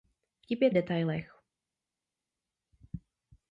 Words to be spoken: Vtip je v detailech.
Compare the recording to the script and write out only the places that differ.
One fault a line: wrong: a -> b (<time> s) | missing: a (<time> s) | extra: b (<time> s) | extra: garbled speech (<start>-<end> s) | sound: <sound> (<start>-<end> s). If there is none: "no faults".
no faults